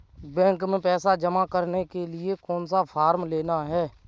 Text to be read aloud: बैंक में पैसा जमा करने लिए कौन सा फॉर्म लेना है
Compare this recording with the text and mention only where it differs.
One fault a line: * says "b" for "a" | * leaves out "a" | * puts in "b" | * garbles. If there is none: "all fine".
* puts in "के"